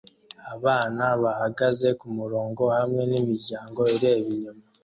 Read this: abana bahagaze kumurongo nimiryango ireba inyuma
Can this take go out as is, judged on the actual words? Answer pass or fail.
fail